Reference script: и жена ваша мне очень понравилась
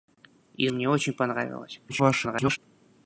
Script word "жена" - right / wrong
wrong